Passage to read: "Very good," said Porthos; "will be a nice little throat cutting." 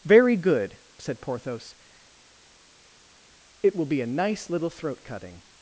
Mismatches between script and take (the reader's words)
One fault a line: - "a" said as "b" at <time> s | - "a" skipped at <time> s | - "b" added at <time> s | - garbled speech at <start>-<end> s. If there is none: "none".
- "it" added at 3.6 s